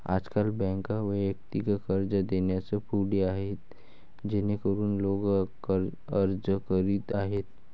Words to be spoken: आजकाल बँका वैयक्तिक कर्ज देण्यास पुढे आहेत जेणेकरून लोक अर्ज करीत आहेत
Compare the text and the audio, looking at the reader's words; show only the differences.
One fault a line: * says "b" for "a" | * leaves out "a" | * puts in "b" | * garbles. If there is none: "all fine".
all fine